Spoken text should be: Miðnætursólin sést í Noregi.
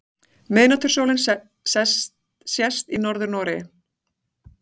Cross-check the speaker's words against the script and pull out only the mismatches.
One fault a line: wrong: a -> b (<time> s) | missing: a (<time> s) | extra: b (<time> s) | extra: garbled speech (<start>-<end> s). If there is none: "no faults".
extra: Norður (3.1 s)